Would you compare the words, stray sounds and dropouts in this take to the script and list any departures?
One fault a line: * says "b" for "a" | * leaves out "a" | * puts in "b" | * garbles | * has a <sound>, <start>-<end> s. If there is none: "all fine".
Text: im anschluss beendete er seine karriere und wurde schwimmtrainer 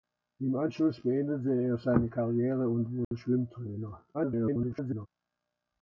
* has a dropout, 3.0-3.1 s
* garbles